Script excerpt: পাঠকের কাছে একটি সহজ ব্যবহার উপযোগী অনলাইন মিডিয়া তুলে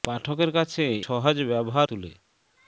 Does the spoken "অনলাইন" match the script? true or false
false